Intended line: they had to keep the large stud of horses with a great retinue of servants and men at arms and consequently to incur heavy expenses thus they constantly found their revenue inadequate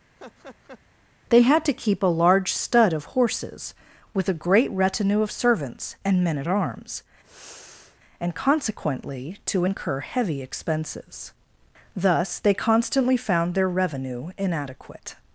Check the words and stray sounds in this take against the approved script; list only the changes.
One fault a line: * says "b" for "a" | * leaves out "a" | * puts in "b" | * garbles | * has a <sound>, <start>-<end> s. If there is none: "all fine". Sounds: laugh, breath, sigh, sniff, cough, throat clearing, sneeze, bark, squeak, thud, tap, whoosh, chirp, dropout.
* has a laugh, 0.2-0.8 s
* says "a" for "the"
* has a sigh, 7.2-8.0 s